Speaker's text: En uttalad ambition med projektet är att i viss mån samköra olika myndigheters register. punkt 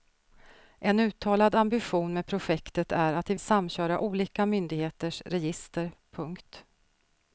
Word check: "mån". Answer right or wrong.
wrong